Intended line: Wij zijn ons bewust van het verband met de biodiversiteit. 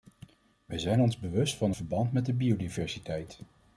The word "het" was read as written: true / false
false